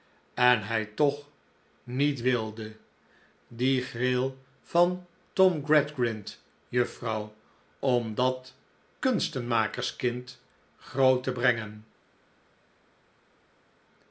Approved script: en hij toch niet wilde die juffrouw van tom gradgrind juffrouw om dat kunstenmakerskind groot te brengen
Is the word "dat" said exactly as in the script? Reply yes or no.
yes